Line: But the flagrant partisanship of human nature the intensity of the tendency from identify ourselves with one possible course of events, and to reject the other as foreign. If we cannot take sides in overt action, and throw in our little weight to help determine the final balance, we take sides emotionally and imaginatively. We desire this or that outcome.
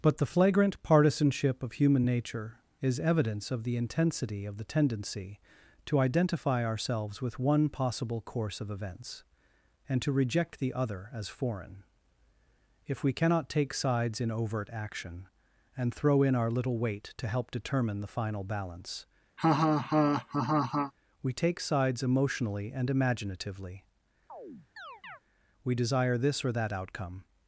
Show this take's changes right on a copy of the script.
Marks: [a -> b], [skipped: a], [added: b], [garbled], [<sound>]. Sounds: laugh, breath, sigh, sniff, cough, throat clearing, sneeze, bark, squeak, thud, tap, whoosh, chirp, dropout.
But the flagrant partisanship of human nature [added: is evidence of] the intensity of the tendency [from -> to] identify ourselves with one possible course of events, and to reject the other as foreign. If we cannot take sides in overt action, and throw in our little weight to help determine the final balance, [laugh] we take sides emotionally and imaginatively. [chirp] We desire this or that outcome.